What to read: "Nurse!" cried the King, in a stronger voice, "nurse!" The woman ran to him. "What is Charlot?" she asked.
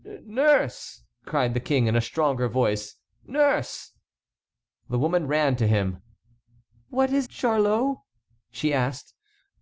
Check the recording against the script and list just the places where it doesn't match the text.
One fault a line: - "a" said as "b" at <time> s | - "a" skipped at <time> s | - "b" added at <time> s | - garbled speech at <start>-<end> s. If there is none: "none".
none